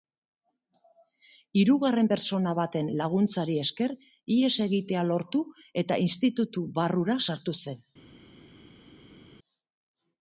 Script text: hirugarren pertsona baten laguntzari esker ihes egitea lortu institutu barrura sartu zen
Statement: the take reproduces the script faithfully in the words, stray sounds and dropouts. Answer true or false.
false